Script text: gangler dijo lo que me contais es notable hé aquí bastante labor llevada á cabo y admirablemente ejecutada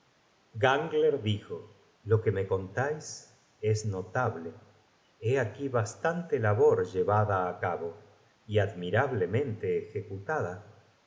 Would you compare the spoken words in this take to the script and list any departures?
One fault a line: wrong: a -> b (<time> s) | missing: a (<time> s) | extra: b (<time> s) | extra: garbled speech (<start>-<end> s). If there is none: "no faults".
no faults